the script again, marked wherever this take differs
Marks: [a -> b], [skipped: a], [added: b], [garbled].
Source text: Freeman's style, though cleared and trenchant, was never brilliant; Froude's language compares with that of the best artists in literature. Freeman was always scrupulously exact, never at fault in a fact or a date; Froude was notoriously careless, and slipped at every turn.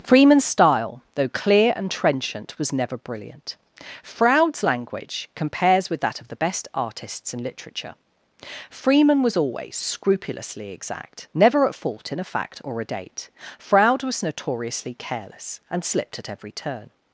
Freeman's style, though [cleared -> clear] and trenchant, was never brilliant; Froude's language compares with that of the best artists in literature. Freeman was always scrupulously exact, never at fault in a fact or a date; Froude was notoriously careless, and slipped at every turn.